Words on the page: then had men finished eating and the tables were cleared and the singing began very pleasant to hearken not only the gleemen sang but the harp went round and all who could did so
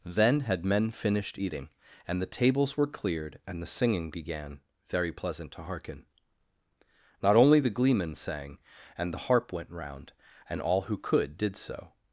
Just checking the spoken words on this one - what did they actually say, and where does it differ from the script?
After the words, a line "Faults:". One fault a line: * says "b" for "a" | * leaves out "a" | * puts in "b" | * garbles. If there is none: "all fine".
then had men finished eating and the tables were cleared and the singing began very pleasant to hearken not only the gleemen sang and the harp went round and all who could did so
Faults:
* says "and" for "but"